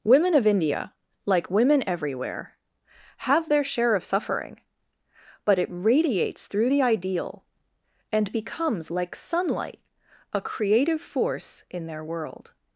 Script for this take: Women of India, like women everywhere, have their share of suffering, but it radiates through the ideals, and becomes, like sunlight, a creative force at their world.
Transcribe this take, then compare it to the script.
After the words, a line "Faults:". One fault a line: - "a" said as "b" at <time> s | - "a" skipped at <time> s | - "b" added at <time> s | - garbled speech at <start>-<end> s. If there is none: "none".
Women of India, like women everywhere, have their share of suffering, but it radiates through the ideal, and becomes, like sunlight, a creative force in their world.
Faults:
- "ideals" said as "ideal" at 6.8 s
- "at" said as "in" at 11.7 s